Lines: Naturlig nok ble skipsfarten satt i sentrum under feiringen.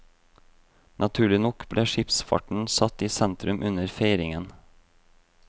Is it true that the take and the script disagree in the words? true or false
false